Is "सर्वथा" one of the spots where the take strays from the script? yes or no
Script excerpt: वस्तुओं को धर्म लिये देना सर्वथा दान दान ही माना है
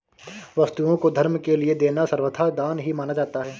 no